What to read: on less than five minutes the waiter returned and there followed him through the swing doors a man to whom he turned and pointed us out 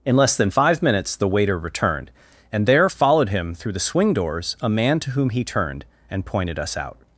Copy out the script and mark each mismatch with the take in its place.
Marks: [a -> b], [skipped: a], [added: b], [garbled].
[on -> in] less than five minutes the waiter returned and there followed him through the swing doors a man to whom he turned and pointed us out